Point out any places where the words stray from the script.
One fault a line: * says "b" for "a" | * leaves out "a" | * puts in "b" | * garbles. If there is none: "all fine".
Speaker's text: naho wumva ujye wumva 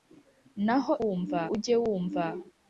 all fine